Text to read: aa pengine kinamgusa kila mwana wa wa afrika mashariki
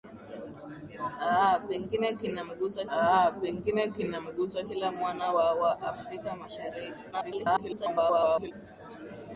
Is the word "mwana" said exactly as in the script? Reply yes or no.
yes